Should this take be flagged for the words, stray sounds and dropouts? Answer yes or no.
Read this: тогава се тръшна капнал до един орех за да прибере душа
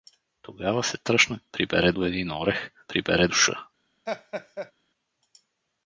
yes